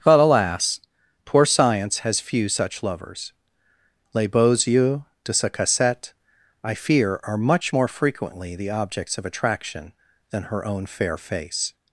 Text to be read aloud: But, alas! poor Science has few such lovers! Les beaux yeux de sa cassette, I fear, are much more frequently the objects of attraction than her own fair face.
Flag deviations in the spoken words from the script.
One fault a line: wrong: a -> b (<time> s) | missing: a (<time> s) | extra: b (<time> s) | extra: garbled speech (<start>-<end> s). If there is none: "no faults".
no faults